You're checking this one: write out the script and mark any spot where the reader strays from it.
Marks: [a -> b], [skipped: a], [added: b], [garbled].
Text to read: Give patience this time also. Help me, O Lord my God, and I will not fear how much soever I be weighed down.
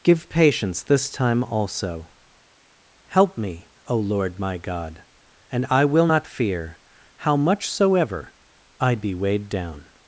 Give patience this time also. Help me, O Lord my God, and I will not fear how much soever I be weighed down.